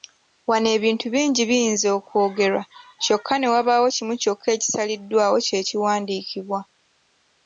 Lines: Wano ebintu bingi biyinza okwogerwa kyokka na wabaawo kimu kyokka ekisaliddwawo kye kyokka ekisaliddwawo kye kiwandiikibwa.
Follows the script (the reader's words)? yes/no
no